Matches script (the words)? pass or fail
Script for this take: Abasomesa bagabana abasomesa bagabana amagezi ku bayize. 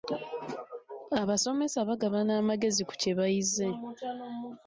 fail